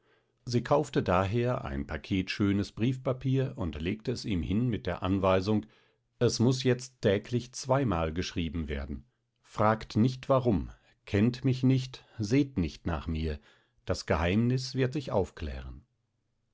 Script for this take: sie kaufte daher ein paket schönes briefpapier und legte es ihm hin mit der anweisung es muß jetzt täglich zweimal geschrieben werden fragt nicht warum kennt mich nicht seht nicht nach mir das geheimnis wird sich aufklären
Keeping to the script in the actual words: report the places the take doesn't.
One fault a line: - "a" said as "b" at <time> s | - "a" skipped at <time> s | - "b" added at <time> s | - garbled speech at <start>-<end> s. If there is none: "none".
none